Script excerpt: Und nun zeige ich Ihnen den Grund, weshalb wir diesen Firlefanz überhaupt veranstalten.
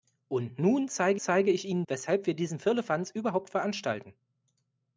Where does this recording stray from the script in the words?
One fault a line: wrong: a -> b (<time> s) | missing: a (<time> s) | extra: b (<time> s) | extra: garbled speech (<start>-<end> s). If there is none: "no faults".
extra: zeige (1.2 s)
missing: den Grund (1.8 s)